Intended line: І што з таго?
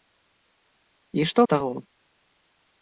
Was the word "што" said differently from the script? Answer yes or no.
no